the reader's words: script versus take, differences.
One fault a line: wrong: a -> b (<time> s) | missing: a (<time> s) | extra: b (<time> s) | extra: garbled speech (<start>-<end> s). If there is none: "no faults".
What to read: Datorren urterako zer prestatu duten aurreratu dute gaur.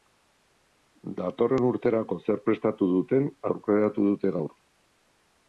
no faults